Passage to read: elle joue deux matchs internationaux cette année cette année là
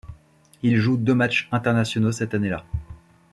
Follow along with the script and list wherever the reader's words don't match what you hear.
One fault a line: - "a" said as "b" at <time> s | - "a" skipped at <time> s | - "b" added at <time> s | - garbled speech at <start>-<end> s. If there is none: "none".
- "elle" said as "il" at 0.6 s
- "cette année" skipped at 2.5 s